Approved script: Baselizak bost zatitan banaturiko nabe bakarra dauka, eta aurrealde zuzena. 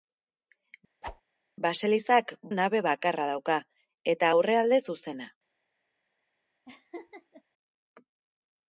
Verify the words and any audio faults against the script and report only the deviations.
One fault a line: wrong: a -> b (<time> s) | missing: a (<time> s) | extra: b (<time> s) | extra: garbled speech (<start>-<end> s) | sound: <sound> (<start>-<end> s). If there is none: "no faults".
sound: whoosh (1.0-1.2 s)
missing: bost zatitan banaturiko (2.3 s)
sound: laugh (6.7-7.4 s)